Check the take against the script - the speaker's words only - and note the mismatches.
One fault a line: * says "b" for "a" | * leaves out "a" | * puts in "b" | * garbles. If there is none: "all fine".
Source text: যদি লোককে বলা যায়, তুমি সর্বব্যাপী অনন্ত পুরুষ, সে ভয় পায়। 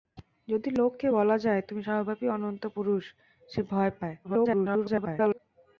* garbles